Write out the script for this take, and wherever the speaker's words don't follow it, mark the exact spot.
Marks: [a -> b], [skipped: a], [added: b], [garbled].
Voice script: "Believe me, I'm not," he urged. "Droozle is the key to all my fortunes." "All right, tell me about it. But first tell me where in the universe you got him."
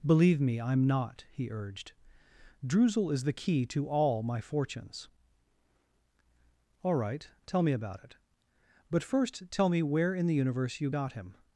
"Believe me, I'm not," he urged. "Droozle is the key to all my fortunes." "All right, tell me about it. But first tell me where in the universe you got him."